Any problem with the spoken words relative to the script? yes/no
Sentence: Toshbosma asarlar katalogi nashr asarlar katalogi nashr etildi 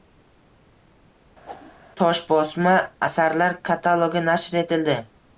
yes